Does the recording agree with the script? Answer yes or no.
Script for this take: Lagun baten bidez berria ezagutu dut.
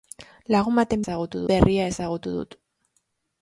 no